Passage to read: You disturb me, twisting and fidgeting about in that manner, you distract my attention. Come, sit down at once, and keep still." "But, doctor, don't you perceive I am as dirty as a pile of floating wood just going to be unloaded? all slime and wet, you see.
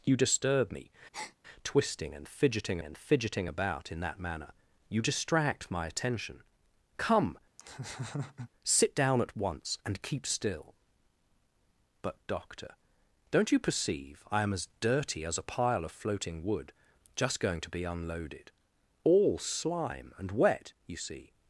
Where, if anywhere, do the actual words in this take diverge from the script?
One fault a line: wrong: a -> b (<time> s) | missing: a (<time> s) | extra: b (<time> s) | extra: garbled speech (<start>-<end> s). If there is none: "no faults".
extra: and fidgeting (2.8 s)